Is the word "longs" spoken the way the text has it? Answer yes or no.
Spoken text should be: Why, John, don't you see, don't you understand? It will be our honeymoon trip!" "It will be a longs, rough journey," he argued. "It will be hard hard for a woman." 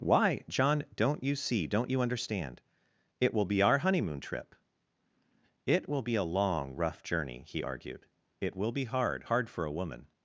no